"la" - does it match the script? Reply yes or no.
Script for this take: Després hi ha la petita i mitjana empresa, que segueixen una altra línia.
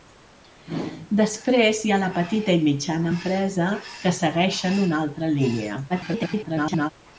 yes